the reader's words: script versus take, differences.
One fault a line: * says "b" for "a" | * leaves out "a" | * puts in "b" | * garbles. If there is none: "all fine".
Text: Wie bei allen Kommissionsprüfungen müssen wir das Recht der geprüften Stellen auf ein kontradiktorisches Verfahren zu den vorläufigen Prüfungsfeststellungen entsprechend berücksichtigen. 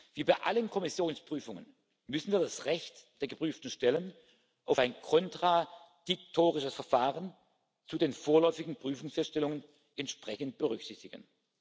all fine